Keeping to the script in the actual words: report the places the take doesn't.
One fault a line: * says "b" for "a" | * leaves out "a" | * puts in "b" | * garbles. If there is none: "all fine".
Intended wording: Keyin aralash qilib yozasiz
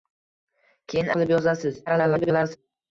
* leaves out "aralash"
* garbles